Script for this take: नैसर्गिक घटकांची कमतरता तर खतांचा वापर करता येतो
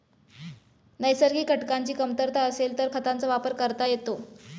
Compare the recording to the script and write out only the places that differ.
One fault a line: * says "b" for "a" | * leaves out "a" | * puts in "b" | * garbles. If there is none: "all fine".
* puts in "असेल"